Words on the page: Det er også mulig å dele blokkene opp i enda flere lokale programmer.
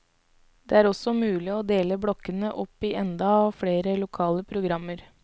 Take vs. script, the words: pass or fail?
pass